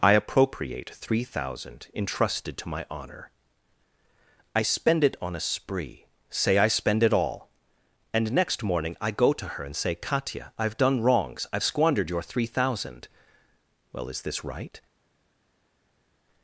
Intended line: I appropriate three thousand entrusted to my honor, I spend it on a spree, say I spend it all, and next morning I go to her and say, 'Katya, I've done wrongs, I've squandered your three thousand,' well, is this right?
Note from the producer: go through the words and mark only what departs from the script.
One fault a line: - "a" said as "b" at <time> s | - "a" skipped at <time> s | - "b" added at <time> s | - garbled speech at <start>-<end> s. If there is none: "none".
none